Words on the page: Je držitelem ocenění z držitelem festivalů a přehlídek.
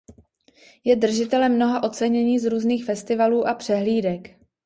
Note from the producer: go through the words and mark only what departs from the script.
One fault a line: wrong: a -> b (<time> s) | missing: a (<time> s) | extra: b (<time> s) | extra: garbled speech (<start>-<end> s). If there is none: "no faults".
extra: mnoha (1.6 s)
wrong: držitelem -> různých (2.5 s)